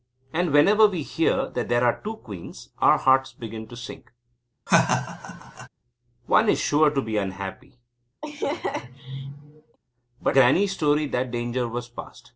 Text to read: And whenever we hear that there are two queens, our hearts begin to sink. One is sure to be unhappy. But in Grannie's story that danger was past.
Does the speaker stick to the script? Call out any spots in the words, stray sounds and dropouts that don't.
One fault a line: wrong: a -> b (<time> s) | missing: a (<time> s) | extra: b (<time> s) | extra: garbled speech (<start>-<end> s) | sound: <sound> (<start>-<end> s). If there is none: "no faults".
sound: laugh (4.7-5.7 s)
sound: laugh (8.2-9.8 s)
missing: in (10.4 s)